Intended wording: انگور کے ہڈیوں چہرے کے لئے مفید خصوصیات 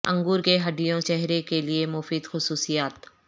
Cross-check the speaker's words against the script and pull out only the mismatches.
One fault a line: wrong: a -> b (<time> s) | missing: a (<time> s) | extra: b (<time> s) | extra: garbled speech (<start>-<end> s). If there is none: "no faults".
no faults